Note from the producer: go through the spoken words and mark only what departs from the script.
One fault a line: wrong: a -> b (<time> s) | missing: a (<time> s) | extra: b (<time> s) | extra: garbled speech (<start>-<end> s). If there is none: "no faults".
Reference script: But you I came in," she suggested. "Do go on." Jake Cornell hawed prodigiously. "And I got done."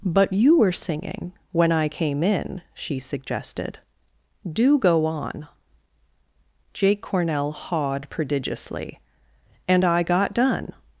extra: were singing when (0.6 s)